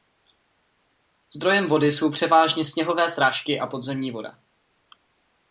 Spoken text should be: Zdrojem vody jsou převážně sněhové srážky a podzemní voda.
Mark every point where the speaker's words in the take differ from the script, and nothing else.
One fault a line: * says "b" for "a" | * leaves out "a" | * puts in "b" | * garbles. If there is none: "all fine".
all fine